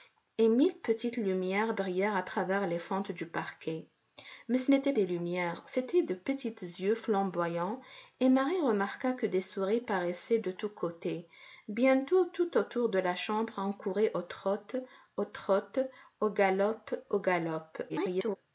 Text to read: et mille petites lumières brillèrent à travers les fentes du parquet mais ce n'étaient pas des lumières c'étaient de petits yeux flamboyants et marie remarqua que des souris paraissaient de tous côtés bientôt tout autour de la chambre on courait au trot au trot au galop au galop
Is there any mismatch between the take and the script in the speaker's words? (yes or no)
yes